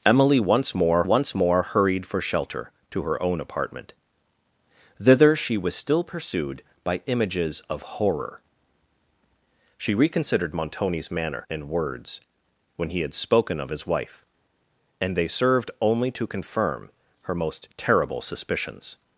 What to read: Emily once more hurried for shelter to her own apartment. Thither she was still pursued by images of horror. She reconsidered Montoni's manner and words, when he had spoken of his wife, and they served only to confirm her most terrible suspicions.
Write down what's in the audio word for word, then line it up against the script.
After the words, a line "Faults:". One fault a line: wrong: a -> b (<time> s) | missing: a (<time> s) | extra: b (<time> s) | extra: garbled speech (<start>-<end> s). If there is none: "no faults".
Emily once more once more hurried for shelter to her own apartment. Thither she was still pursued by images of horror. She reconsidered Montoni's manner and words, when he had spoken of his wife, and they served only to confirm her most terrible suspicions.
Faults:
extra: once more (1.0 s)